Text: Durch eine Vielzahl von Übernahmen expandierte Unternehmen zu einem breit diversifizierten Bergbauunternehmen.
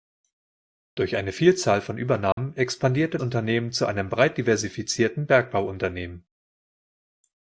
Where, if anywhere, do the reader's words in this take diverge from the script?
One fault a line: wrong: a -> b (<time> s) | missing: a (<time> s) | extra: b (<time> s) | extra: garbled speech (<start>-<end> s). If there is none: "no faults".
no faults